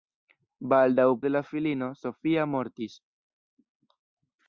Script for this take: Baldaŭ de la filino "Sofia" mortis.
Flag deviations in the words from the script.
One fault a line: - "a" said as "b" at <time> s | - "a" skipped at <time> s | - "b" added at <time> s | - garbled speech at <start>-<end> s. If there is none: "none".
none